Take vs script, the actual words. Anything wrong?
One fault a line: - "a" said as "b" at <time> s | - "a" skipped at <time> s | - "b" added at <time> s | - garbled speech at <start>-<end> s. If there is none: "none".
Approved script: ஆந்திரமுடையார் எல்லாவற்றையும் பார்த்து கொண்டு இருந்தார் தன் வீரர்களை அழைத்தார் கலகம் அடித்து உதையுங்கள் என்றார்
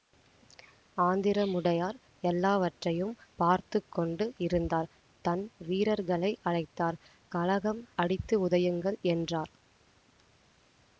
none